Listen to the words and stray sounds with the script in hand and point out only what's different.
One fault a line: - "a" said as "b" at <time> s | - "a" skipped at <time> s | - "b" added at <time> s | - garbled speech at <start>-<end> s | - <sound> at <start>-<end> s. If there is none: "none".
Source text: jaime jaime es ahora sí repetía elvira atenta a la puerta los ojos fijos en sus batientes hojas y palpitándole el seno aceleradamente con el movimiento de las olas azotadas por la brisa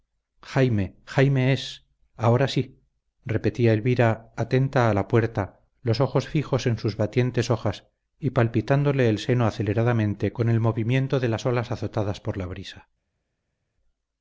none